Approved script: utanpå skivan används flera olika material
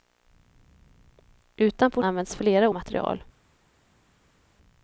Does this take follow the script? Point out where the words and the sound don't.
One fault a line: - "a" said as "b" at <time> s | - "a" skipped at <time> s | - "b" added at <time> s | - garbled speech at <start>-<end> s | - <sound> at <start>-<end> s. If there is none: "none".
- "skivan" skipped at 2.0 s
- "olika" skipped at 2.7 s